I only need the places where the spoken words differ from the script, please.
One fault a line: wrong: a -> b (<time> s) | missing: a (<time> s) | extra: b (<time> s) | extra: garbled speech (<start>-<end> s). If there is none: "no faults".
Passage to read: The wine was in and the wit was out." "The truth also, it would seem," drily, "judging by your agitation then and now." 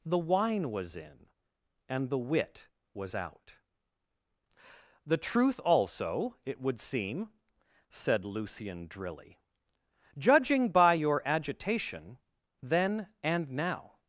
extra: said Lucian (7.9 s)